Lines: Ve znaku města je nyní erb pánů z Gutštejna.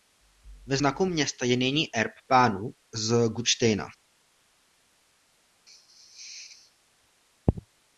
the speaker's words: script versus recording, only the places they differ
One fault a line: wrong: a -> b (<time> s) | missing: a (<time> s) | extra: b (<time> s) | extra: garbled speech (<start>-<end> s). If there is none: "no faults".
no faults